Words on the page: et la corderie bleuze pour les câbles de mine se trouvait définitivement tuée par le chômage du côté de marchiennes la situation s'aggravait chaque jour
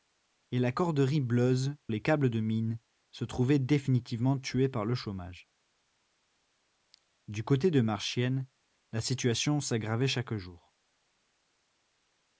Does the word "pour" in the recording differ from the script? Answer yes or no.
yes